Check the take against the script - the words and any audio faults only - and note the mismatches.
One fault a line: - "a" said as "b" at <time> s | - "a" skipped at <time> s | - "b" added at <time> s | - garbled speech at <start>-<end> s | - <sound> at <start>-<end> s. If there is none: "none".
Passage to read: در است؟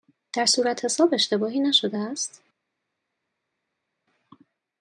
- "صورتحساب اشتباهی نشده" added at 0.5 s